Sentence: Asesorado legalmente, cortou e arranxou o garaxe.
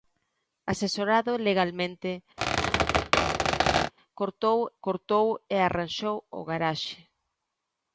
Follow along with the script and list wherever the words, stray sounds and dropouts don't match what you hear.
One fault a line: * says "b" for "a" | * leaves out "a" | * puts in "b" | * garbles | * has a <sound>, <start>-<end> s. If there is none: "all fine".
* has a squeak, 2.4-3.9 s
* puts in "cortou"